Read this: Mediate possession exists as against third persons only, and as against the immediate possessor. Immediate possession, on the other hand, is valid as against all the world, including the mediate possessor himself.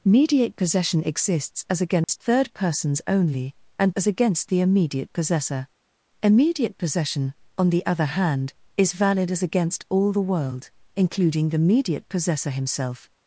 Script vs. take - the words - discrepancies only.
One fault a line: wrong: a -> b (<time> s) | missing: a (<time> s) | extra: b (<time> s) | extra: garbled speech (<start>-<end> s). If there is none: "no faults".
no faults